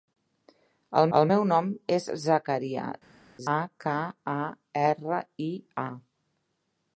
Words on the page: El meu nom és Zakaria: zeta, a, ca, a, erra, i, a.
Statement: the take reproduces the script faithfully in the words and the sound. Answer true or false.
false